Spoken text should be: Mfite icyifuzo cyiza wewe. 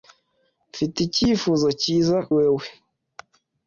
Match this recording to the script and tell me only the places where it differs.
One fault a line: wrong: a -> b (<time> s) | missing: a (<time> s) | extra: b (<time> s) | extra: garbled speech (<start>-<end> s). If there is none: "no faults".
no faults